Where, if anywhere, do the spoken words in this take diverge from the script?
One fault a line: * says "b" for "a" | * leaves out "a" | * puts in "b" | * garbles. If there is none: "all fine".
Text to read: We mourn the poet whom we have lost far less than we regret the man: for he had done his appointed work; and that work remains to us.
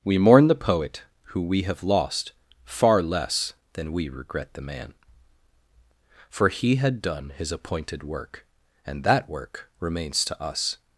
* says "who" for "whom"